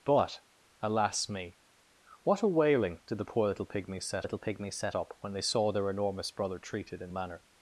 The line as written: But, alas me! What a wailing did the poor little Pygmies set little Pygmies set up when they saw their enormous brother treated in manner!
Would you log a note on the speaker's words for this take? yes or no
no